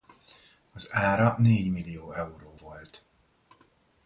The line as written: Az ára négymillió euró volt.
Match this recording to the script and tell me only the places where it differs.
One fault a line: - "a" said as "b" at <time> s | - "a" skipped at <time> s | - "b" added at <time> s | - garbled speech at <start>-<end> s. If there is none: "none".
none